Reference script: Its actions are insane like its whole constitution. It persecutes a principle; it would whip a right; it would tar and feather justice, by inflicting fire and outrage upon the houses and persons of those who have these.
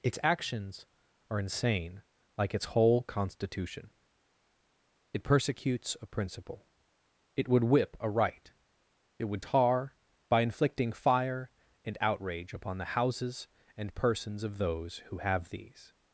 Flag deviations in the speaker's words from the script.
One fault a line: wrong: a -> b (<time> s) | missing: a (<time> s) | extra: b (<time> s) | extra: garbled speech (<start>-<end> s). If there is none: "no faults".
missing: and feather justice (9.9 s)